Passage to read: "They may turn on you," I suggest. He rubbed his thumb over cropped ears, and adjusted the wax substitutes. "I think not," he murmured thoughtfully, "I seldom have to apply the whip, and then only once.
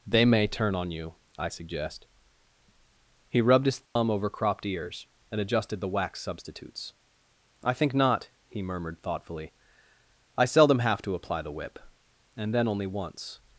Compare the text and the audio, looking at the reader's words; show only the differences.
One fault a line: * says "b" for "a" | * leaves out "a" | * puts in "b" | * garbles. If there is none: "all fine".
all fine